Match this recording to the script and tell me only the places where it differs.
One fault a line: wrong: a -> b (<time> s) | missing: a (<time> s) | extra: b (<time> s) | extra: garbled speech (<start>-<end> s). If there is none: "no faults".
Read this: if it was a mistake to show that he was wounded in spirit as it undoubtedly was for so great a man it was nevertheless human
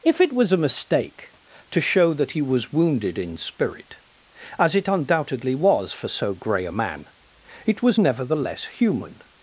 wrong: great -> grey (6.3 s)